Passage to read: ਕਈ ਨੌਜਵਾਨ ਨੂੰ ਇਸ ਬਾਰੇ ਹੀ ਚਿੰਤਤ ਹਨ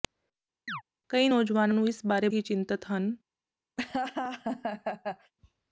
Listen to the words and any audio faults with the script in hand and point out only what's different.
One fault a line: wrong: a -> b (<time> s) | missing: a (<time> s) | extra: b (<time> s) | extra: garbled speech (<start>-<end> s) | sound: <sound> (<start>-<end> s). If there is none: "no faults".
sound: chirp (0.7-0.8 s)
sound: laugh (3.8-5.3 s)